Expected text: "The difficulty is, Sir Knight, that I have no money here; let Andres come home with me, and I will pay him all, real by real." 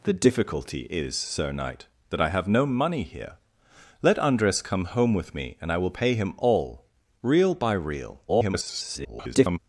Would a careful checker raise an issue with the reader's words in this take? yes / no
yes